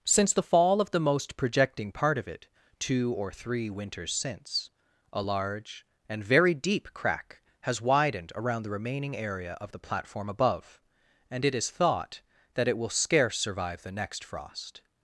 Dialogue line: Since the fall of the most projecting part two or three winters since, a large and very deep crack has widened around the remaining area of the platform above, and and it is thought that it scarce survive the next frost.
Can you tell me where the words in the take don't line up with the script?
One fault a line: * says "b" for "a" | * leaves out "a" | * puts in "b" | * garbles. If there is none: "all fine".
* puts in "of it"
* leaves out "and"
* puts in "will"